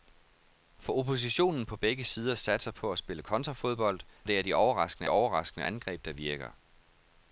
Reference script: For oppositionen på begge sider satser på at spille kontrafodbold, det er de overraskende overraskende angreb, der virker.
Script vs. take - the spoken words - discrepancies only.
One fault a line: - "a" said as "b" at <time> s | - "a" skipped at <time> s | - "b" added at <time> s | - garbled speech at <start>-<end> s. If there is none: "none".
none